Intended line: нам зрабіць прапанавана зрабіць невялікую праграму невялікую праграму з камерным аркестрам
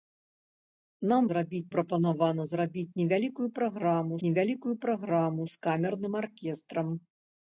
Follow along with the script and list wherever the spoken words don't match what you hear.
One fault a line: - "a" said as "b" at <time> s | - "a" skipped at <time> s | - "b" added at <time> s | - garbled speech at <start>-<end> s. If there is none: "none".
none